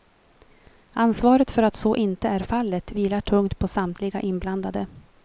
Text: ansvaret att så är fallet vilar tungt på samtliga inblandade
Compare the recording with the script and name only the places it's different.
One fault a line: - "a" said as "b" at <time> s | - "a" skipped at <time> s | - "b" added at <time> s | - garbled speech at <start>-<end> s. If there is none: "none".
- "för" added at 1.5 s
- "inte" added at 1.9 s